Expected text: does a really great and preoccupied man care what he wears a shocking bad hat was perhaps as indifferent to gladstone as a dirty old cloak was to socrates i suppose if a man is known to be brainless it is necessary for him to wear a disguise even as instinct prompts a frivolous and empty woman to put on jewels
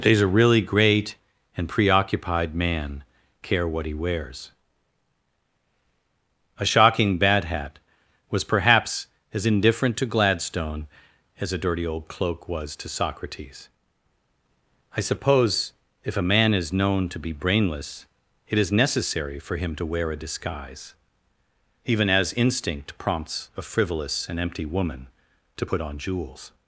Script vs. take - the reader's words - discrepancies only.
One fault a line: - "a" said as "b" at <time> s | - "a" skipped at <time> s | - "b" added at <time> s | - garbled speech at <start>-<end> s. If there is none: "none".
none